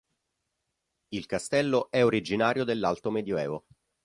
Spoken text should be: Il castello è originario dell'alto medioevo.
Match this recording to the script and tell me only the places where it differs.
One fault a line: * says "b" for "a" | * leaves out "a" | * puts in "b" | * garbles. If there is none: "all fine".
all fine